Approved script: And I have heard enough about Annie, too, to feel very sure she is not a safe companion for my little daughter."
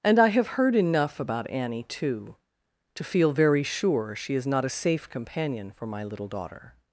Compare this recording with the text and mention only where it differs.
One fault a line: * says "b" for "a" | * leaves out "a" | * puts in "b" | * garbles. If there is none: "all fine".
all fine